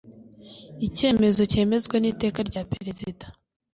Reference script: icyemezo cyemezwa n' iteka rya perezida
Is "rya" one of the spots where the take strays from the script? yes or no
no